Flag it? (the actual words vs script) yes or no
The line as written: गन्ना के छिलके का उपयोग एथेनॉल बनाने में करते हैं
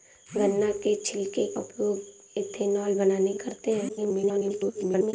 yes